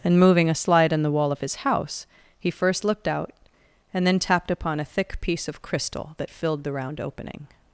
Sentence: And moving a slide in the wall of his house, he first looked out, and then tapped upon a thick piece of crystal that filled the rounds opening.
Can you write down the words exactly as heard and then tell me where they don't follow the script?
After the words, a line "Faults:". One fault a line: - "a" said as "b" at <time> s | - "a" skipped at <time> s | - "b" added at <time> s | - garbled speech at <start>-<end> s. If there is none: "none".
And moving a slide in the wall of his house, he first looked out, and then tapped upon a thick piece of crystal that filled the round opening.
Faults:
- "rounds" said as "round" at 6.7 s